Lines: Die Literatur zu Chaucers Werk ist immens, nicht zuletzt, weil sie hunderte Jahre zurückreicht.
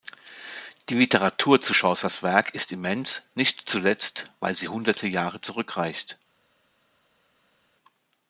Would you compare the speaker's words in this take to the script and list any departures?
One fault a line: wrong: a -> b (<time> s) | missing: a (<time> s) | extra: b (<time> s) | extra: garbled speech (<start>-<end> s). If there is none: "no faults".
no faults